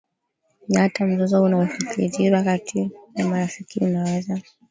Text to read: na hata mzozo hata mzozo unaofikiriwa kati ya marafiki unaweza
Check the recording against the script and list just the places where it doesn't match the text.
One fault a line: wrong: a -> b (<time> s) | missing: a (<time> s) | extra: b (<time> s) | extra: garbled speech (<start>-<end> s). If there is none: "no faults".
missing: hata mzozo (1.4 s)